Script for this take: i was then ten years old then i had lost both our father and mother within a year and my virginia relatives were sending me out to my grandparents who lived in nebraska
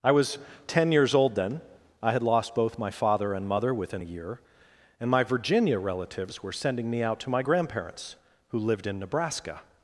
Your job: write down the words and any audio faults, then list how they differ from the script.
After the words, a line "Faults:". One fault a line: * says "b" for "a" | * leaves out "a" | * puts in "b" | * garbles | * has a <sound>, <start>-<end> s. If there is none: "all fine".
i was ten years old then i had lost both my father and mother within a year and my virginia relatives were sending me out to my grandparents who lived in nebraska
Faults:
* leaves out "then"
* says "my" for "our"